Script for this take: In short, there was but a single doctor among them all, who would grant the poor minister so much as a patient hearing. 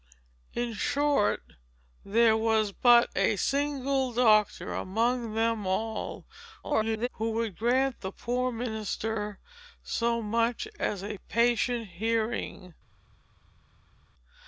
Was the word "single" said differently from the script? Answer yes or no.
no